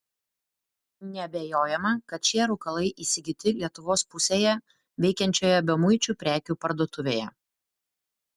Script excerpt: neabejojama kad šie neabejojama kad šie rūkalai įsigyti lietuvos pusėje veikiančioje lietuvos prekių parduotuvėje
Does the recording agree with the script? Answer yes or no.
no